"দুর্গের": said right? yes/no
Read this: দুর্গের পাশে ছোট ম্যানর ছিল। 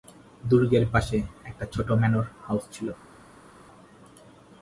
yes